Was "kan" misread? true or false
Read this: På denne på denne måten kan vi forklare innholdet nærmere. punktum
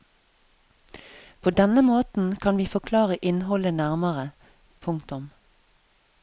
false